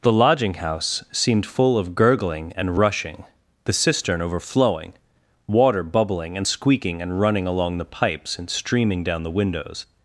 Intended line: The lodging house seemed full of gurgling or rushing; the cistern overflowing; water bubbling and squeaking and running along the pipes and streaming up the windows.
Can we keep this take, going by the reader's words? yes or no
no